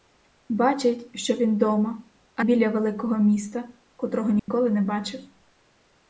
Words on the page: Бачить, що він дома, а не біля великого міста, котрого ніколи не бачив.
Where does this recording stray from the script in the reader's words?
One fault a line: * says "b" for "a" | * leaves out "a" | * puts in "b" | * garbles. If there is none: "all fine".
* leaves out "не"